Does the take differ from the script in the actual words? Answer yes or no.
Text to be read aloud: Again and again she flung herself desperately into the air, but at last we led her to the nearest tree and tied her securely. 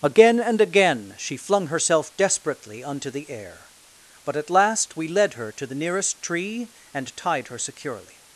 yes